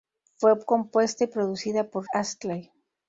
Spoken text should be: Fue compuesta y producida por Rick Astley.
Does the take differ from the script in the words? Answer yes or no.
yes